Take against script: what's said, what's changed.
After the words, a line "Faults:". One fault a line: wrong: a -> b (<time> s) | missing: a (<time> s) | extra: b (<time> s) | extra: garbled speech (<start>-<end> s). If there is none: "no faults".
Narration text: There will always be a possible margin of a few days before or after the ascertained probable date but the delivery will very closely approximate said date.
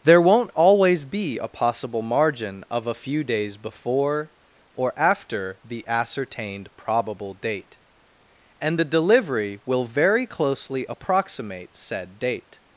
There won't always be a possible margin of a few days before or after the ascertained probable date and the delivery will very closely approximate said date.
Faults:
wrong: will -> won't (0.2 s)
wrong: but -> and (8.6 s)